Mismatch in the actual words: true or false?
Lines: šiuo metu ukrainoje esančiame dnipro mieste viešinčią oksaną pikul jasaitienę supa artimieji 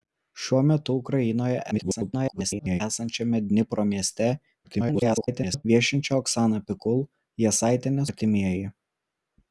true